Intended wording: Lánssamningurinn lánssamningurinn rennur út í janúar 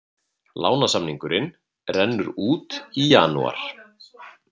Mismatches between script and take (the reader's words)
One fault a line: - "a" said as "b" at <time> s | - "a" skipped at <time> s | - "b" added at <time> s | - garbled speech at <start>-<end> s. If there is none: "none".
- "lánssamningurinn" skipped at 1.5 s